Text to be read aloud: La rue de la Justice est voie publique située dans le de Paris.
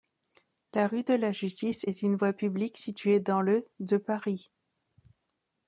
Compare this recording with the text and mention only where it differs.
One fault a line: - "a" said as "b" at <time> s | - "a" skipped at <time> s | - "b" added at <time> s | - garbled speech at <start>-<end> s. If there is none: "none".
- "une" added at 2.0 s